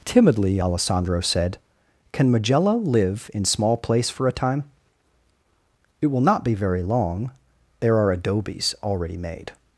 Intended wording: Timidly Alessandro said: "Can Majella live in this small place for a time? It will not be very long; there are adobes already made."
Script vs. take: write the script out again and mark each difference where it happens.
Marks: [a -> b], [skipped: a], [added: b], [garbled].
Timidly Alessandro said: "Can Majella live in [skipped: this] small place for a time? It will not be very long; there are adobes already made."